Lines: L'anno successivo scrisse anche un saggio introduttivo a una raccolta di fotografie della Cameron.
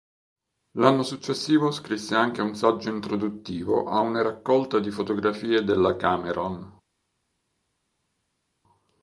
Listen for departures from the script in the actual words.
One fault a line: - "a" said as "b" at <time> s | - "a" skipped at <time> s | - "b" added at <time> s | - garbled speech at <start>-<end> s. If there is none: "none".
none